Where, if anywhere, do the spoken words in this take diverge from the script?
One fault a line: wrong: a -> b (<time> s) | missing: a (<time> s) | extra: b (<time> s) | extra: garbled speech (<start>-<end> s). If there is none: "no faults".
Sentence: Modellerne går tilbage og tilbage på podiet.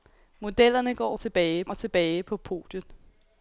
no faults